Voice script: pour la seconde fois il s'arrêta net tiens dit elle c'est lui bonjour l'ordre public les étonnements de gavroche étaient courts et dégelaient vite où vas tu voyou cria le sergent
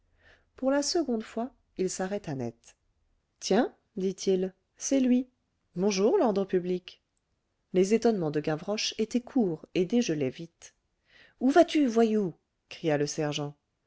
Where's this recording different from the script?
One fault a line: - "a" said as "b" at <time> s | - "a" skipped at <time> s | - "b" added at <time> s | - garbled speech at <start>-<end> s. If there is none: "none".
- "elle" said as "il" at 4.3 s